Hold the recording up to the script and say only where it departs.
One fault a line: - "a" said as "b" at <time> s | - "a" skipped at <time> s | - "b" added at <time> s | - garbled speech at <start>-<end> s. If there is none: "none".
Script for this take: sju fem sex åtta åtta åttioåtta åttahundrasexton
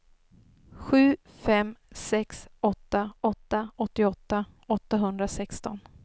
none